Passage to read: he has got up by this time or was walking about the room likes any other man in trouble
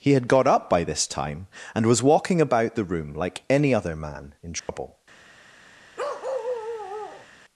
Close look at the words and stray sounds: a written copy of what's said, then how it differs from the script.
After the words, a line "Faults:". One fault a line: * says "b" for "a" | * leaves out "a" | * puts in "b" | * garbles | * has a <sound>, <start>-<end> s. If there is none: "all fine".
he had got up by this time and was walking about the room like any other man in trouble
Faults:
* says "had" for "has"
* says "and" for "or"
* says "like" for "likes"
* has a dropout, 4.6-4.7 s
* has a bark, 6.0-7.3 s